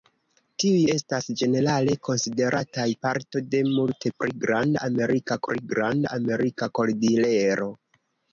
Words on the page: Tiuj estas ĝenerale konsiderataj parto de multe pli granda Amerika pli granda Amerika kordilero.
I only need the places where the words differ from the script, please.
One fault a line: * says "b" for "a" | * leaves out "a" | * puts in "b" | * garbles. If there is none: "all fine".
all fine